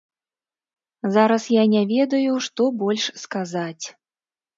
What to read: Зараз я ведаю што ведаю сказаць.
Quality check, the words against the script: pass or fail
fail